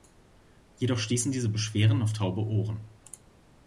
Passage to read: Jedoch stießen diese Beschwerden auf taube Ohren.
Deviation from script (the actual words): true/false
false